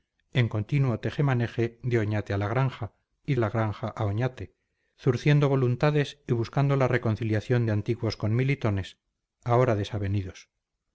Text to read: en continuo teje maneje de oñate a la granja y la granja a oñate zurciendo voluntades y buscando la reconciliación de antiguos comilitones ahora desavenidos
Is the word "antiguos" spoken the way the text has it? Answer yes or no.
yes